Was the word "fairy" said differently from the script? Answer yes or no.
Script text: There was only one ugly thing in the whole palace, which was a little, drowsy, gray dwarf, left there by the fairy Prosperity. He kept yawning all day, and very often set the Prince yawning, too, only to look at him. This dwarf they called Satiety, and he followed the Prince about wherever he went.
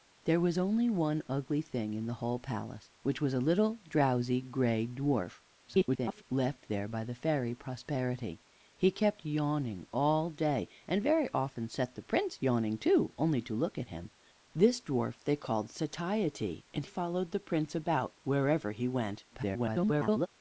no